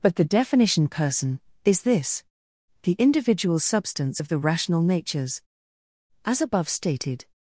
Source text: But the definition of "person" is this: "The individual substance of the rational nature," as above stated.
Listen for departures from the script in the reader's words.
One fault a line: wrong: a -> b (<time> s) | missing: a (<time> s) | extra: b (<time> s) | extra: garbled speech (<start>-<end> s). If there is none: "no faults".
missing: of (0.9 s)
wrong: nature -> natures (4.8 s)